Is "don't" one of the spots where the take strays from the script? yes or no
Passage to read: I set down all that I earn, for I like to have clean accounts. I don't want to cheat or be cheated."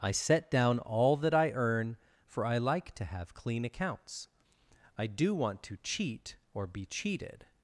yes